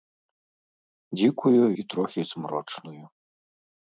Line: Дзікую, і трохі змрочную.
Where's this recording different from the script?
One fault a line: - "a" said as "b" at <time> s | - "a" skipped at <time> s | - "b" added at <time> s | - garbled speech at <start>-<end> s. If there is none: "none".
none